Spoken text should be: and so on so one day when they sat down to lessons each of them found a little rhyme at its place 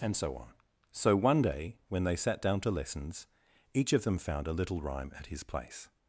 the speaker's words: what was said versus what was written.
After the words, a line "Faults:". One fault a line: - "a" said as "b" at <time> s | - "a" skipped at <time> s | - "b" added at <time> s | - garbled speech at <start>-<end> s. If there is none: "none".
and so on so one day when they sat down to lessons each of them found a little rhyme at his place
Faults:
- "its" said as "his" at 5.3 s